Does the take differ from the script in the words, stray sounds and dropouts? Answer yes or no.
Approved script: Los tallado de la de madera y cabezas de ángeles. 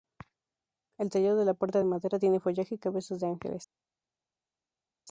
yes